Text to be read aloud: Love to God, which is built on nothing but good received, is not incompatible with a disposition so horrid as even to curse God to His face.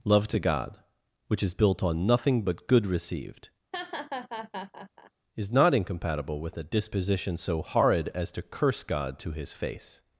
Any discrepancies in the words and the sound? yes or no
yes